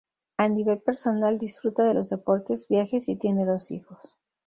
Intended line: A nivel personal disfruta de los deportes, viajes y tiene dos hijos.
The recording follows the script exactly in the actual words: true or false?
true